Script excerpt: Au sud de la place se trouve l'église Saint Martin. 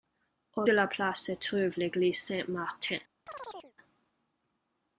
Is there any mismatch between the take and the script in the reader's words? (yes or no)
yes